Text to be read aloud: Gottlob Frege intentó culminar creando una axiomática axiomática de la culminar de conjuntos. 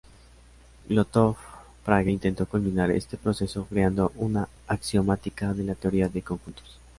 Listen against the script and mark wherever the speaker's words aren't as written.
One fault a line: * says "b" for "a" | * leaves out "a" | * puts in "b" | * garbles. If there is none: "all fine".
* puts in "este proceso"
* leaves out "axiomática"
* says "teoría" for "culminar"